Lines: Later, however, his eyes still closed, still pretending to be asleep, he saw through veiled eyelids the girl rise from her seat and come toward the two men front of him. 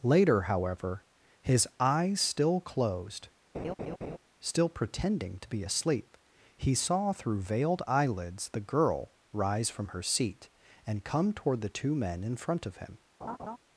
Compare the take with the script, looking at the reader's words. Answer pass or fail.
fail